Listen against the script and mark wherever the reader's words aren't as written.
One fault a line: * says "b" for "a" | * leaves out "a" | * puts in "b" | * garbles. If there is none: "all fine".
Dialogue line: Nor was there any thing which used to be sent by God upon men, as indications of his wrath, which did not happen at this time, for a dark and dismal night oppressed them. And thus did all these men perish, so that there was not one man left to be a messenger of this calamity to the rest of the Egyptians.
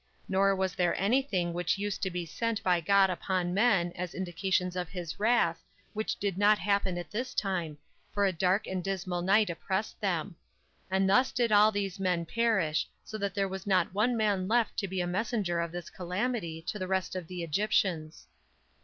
all fine